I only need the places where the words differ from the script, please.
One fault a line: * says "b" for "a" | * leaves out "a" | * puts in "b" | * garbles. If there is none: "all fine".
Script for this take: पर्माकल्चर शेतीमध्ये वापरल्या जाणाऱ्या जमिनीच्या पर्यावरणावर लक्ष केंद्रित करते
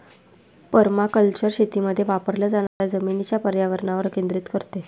* leaves out "लक्ष"